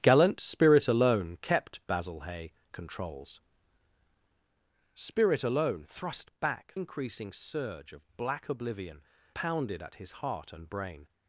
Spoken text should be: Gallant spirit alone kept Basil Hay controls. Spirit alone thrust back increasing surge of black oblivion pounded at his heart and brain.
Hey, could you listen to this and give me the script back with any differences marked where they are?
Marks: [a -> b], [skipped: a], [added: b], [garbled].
Gallant spirit alone kept Basil Hay controls. Spirit alone thrust back increasing surge of black oblivion pounded at his heart and brain.